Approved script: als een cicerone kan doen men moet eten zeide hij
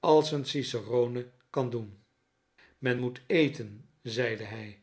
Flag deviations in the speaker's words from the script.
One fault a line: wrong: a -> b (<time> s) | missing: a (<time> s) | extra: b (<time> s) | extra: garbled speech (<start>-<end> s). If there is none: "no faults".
no faults